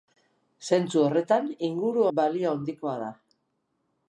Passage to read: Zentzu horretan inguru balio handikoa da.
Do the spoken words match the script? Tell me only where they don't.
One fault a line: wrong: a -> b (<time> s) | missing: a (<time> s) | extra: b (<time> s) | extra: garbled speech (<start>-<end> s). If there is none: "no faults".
no faults